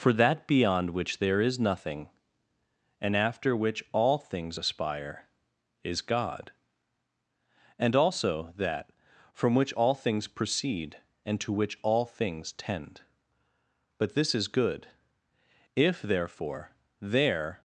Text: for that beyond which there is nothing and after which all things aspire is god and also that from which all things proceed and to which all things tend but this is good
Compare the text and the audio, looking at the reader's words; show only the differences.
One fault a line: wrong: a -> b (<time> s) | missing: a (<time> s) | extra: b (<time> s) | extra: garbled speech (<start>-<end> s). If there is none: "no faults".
extra: if therefore there (15.7 s)